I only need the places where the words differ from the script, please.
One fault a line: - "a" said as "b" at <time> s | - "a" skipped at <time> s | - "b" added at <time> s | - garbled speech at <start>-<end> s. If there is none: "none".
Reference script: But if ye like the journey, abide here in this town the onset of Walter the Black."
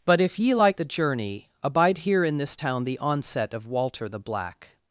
none